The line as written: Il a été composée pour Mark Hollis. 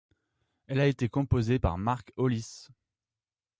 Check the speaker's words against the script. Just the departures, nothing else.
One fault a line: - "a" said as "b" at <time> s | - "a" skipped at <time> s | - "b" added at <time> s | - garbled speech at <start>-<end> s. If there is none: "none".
- "Il" said as "Elle" at 0.7 s
- "pour" said as "par" at 1.6 s